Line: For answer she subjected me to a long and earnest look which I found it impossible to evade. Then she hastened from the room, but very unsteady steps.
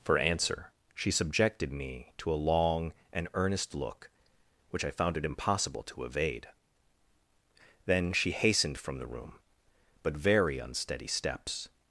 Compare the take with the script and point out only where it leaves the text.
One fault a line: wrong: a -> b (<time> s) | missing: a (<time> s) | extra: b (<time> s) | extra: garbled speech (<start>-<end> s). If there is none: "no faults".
no faults